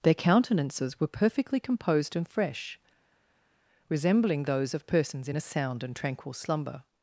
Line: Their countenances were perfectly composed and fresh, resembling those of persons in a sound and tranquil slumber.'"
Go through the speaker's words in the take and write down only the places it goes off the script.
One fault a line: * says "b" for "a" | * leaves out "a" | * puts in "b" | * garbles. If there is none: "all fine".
all fine